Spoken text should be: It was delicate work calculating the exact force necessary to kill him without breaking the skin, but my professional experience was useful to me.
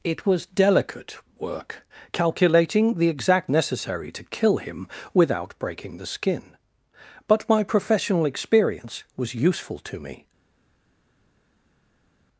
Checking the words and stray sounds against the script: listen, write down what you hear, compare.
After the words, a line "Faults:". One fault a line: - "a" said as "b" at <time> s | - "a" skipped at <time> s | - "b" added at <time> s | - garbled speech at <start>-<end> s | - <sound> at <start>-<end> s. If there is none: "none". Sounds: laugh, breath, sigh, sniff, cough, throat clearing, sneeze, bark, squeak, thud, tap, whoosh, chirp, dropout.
It was delicate work calculating the exact necessary to kill him without breaking the skin, but my professional experience was useful to me.
Faults:
- "force" skipped at 3.5 s